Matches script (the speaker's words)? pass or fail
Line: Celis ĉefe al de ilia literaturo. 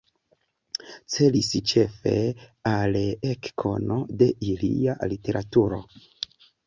fail